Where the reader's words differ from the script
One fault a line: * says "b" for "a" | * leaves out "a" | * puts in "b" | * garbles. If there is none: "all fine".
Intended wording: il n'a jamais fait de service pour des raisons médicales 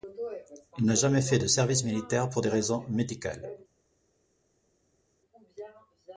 * puts in "militaire"